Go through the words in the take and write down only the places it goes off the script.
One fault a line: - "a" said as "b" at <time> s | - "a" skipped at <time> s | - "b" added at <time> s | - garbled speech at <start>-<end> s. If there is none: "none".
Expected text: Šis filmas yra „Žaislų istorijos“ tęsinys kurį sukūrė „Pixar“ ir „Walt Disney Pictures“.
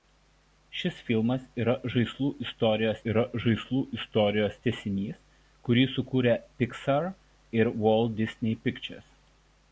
- "yra Žaislų istorijos" added at 3.1 s